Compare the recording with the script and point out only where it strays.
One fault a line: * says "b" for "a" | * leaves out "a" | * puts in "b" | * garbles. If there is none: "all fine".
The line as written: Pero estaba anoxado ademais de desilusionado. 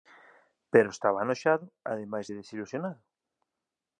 all fine